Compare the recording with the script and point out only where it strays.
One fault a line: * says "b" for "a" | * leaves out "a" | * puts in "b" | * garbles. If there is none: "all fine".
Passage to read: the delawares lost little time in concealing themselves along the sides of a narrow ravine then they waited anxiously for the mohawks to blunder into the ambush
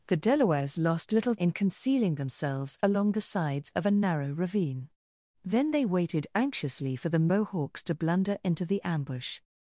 * leaves out "time"